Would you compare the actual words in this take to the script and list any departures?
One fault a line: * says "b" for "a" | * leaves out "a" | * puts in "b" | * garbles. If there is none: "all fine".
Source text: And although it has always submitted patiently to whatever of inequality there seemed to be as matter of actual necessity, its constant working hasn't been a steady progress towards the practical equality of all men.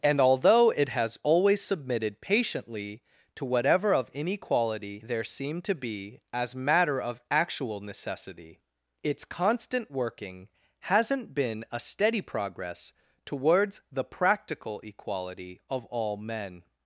all fine